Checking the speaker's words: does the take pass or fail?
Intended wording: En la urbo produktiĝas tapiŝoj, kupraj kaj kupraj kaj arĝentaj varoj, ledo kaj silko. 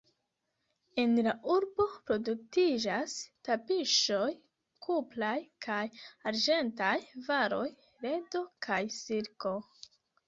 fail